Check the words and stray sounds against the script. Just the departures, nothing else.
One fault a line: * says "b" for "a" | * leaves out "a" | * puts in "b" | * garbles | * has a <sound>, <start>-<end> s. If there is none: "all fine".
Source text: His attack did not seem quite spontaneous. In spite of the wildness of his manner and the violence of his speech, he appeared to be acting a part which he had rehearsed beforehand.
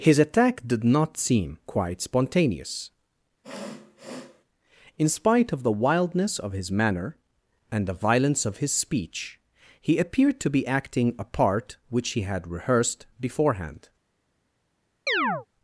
* has a sniff, 3.4-4.4 s
* has a chirp, 15.1-15.5 s